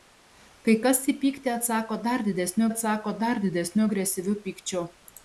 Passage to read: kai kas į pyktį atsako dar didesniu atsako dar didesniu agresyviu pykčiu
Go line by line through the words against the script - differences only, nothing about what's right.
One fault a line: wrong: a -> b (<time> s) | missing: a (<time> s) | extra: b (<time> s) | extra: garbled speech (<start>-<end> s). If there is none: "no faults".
no faults